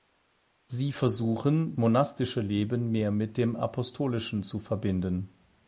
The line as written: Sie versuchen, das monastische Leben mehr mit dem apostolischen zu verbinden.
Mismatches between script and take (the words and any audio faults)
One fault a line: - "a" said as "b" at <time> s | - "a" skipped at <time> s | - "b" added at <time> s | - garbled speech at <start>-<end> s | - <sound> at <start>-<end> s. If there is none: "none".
- "das" skipped at 1.8 s